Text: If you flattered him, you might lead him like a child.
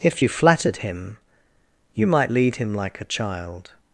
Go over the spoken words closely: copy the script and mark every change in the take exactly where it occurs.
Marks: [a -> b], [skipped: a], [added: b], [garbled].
If you flattered him, you might lead him like a child.